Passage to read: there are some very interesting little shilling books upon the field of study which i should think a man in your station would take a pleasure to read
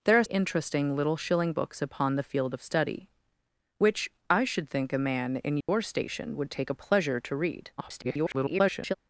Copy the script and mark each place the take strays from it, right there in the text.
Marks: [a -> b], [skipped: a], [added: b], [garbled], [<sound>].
there are [skipped: some very] interesting little shilling books upon the field of study which i should think a man in your [dropout] station would take a pleasure to read [garbled]